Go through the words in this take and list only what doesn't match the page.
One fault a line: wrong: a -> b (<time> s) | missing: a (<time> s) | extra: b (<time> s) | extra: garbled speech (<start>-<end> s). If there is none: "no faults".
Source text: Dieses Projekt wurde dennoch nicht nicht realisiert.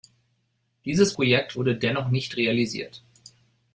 missing: nicht (2.4 s)